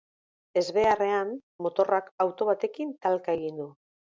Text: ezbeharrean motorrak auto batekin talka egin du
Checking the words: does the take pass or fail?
pass